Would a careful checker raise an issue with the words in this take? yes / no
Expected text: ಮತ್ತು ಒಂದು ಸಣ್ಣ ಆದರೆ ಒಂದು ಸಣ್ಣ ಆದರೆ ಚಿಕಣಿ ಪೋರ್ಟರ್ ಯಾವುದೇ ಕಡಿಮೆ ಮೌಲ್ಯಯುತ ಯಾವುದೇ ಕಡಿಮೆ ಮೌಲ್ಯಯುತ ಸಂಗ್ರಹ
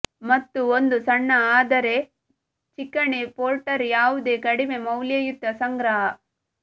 yes